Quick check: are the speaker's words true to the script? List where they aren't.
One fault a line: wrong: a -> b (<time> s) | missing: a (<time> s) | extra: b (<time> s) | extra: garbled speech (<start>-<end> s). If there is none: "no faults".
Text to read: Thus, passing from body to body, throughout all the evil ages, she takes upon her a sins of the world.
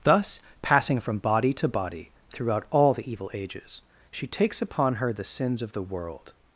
wrong: a -> the (5.1 s)